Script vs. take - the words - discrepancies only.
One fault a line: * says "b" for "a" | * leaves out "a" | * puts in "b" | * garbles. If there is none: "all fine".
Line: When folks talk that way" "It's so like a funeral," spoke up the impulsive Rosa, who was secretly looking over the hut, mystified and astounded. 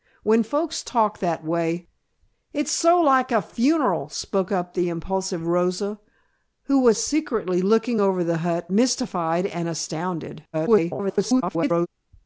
* garbles